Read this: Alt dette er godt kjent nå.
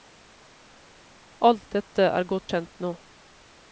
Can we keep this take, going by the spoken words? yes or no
yes